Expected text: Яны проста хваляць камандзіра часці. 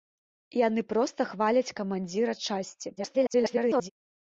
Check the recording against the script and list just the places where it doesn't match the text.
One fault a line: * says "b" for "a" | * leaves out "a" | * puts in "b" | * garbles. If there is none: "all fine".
* garbles